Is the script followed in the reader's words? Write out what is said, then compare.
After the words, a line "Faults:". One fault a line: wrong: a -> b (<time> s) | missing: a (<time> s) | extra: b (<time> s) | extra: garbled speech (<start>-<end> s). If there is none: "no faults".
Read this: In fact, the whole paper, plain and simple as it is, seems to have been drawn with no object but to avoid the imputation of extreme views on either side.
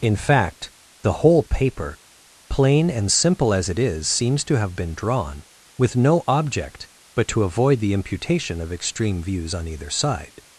In fact, the whole paper, plain and simple as it is, seems to have been drawn with no object but to avoid the imputation of extreme views on either side.
Faults:
no faults